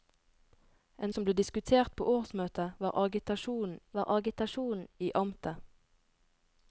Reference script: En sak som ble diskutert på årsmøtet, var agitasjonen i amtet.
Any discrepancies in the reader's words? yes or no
yes